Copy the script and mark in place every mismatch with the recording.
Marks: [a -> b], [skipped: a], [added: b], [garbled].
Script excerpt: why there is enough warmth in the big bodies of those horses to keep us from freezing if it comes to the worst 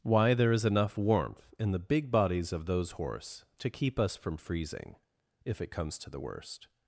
why there is enough warmth in the big bodies of those [horses -> horse] to keep us from freezing if it comes to the worst